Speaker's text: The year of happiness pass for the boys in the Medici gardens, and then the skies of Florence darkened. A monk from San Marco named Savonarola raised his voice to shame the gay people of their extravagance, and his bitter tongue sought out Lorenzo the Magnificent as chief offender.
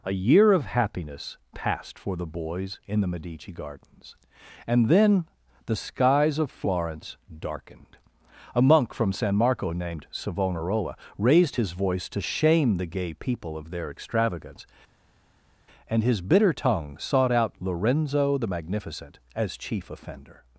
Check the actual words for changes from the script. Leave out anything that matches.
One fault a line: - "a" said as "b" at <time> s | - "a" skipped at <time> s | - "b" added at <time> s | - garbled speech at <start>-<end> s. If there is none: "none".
- "The" said as "A" at 0.0 s
- "pass" said as "passed" at 1.5 s